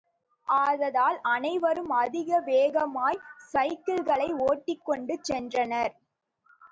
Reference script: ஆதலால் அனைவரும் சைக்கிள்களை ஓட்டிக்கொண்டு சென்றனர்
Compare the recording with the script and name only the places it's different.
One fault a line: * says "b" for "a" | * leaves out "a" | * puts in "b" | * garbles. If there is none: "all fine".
* puts in "அதிக வேகமாய்"